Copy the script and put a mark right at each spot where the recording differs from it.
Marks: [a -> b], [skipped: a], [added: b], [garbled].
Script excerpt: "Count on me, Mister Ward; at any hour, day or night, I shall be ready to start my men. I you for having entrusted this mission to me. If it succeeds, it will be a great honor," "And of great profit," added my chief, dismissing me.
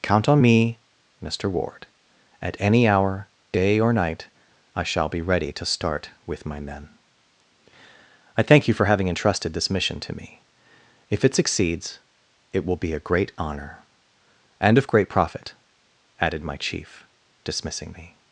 "Count on me, Mister Ward; at any hour, day or night, I shall be ready to start [added: with] my men. I [added: thank] you for having entrusted this mission to me. If it succeeds, it will be a great honor," "And of great profit," added my chief, dismissing me.